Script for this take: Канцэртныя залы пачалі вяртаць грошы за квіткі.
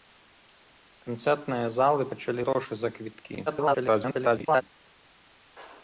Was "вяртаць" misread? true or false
true